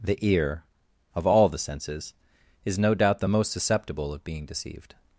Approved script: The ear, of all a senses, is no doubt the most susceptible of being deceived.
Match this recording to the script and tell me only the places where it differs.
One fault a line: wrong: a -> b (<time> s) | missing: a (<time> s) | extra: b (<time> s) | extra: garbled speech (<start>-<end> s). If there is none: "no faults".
wrong: a -> the (1.5 s)